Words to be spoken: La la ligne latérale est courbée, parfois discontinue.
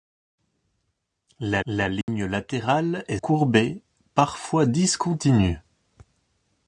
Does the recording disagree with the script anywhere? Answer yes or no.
no